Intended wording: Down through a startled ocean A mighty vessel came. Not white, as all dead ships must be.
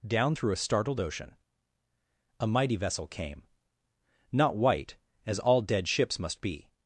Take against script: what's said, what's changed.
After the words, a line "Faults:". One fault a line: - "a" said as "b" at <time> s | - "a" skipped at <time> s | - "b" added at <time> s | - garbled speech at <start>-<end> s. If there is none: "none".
Down through a startled ocean A mighty vessel came. Not white, as all dead ships must be.
Faults:
none